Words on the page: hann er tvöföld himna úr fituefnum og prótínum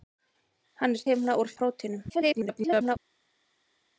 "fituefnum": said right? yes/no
no